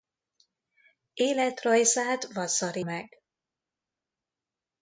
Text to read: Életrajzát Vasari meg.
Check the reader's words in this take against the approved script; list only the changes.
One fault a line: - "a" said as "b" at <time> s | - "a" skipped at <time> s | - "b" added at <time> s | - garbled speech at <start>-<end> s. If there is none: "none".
none